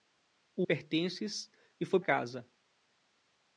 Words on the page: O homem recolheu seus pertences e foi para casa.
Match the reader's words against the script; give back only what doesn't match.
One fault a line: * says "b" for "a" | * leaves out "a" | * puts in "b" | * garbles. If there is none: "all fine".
* leaves out "homem recolheu seus"
* leaves out "para"